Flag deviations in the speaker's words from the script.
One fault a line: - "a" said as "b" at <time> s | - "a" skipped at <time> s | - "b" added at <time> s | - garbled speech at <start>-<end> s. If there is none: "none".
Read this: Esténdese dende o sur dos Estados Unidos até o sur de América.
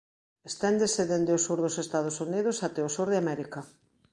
none